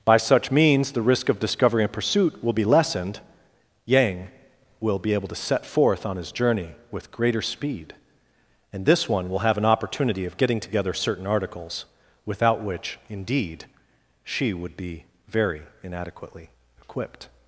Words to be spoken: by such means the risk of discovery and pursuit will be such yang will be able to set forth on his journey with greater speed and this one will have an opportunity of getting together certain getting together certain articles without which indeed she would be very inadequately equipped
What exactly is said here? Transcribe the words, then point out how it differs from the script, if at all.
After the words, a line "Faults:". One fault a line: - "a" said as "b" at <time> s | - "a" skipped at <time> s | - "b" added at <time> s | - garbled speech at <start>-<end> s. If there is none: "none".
by such means the risk of discovery and pursuit will be lessened yang will be able to set forth on his journey with greater speed and this one will have an opportunity of getting together certain articles without which indeed she would be very inadequately equipped
Faults:
- "such" said as "lessened" at 2.6 s
- "getting together certain" skipped at 11.3 s